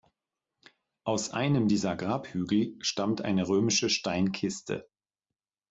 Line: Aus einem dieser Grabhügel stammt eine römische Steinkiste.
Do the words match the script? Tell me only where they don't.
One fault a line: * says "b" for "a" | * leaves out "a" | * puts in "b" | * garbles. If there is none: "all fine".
all fine